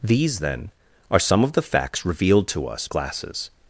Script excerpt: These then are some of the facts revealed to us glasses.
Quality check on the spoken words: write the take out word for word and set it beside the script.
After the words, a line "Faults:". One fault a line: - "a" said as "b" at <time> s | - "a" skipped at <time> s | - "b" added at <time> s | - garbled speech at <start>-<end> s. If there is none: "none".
These then are some of the facts revealed to us glasses.
Faults:
none